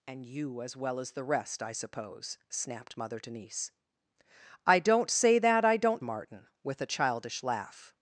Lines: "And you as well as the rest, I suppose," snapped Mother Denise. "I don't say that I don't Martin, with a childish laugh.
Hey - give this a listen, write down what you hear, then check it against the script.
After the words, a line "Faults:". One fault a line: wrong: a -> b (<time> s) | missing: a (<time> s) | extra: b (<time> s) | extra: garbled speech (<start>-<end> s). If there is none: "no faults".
"And you as well as the rest, I suppose," snapped Mother Denise. "I don't say that I don't Martin, with a childish laugh.
Faults:
no faults